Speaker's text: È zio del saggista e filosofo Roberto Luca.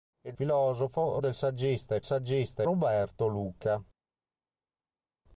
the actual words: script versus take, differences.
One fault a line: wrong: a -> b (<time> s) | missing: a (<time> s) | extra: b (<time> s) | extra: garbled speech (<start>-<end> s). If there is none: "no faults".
wrong: zio -> filosofo (0.3 s)
wrong: filosofo -> saggista (2.0 s)